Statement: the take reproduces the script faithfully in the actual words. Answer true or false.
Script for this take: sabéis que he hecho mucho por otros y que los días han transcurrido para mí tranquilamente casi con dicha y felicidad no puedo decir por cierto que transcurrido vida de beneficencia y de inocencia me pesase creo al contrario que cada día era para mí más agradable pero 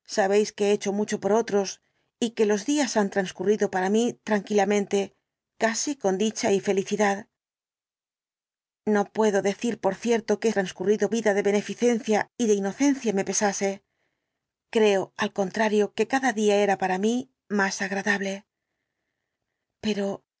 true